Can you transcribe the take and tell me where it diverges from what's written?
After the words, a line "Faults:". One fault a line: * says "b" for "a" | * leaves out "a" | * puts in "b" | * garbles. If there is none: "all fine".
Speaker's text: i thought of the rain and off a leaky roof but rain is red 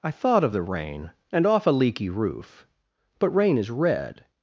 i thought of the rain and off a leaky roof but rain is red
Faults:
all fine